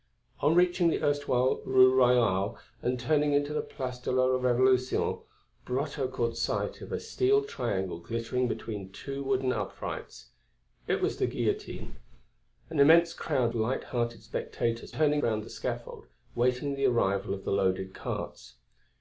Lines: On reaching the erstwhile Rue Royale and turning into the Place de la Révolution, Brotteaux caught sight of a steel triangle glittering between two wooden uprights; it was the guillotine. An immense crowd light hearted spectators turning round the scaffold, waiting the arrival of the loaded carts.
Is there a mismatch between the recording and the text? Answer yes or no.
no